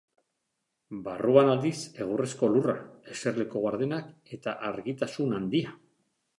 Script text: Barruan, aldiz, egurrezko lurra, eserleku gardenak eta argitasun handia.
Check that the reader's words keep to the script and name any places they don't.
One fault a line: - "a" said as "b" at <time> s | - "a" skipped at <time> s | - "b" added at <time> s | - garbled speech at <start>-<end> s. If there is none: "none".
none